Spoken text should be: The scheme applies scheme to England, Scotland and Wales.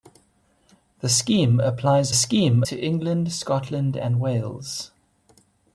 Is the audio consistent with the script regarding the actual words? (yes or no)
yes